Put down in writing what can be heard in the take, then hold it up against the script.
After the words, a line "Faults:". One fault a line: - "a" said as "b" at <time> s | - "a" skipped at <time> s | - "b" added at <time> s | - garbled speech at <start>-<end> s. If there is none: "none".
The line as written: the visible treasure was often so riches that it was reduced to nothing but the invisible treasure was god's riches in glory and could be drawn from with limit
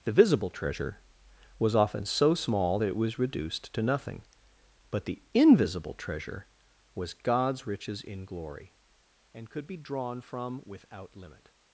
the visible treasure was often so small that it was reduced to nothing but the invisible treasure was god's riches in glory and could be drawn from without limit
Faults:
- "riches" said as "small" at 2.3 s
- "with" said as "without" at 10.6 s